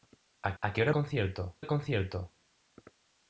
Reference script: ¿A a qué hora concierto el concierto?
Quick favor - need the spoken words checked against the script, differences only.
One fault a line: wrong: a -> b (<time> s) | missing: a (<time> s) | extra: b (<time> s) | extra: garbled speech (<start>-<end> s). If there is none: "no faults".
no faults